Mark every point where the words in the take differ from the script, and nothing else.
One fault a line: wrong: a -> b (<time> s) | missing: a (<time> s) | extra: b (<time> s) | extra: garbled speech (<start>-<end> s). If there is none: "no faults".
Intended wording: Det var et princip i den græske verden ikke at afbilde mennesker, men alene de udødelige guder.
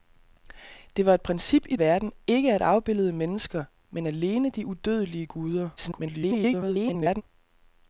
missing: den græske (1.8 s)
extra: garbled speech (5.8-7.2 s)